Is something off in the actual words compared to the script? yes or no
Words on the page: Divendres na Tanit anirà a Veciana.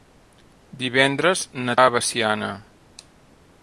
yes